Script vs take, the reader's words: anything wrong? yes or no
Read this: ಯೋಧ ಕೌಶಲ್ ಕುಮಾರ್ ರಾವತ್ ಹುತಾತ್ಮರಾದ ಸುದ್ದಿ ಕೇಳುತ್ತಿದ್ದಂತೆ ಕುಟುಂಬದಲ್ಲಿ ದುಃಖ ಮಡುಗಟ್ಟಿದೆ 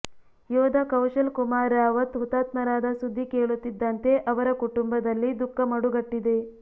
yes